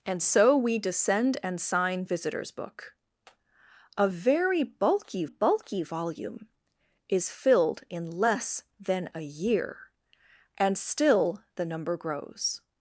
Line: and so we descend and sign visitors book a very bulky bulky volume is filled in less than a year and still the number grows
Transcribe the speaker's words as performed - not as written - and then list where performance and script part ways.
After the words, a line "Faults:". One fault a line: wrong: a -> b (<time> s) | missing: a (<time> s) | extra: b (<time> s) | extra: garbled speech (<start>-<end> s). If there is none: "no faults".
and so we descend and sign visitors book a very bulky bulky volume is filled in less than a year and still the number grows
Faults:
no faults